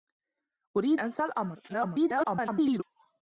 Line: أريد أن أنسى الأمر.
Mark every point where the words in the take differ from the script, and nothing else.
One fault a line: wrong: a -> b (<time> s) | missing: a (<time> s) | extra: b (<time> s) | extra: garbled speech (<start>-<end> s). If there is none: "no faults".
missing: أن (1.0 s)
extra: garbled speech (1.7-2.8 s)